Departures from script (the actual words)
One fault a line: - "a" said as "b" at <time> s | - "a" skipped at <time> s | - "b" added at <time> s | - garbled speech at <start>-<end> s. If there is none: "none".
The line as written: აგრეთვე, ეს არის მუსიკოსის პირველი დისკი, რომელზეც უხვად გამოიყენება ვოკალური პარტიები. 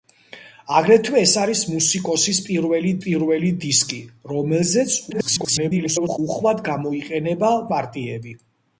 - "პირველი" added at 3.0 s
- garbled speech at 5.1-6.2 s
- "ვოკალური" skipped at 7.5 s